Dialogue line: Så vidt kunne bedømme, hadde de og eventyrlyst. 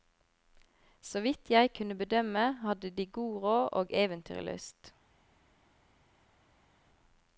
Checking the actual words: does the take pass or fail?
fail